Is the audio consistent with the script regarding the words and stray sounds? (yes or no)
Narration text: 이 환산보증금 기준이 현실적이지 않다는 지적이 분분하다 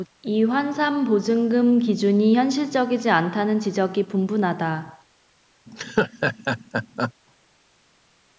no